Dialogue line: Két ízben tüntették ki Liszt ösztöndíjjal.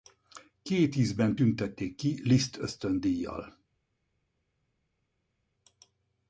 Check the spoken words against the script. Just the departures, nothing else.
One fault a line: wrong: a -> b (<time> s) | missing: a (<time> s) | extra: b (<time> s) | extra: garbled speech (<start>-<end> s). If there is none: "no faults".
no faults